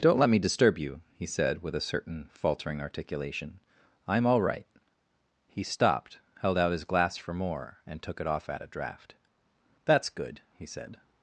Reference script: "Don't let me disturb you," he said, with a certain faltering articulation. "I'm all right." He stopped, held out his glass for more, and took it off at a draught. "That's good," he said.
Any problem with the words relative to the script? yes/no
no